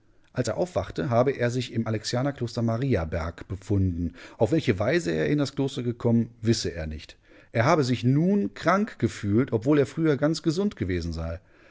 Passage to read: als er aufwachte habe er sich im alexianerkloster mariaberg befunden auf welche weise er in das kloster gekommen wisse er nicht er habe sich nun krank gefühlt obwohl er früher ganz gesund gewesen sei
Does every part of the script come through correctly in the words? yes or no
yes